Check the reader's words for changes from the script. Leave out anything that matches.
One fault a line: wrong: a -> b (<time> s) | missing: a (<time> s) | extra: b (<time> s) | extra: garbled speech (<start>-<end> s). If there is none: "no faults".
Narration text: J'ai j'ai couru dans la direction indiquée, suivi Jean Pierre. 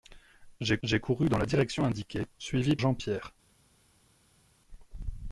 no faults